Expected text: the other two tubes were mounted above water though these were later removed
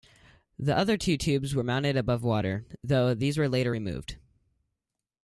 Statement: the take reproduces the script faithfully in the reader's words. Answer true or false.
true